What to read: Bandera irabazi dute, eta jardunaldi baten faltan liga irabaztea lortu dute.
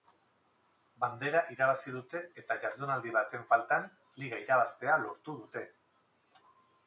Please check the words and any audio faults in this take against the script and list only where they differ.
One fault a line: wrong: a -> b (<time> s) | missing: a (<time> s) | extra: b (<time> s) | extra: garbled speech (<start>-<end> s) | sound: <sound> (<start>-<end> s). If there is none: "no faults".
no faults